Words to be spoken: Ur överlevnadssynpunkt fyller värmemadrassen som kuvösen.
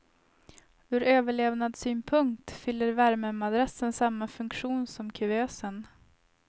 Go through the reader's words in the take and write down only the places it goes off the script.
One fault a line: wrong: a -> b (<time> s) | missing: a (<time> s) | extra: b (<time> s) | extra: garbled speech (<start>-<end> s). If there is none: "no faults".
extra: samma funktion (3.9 s)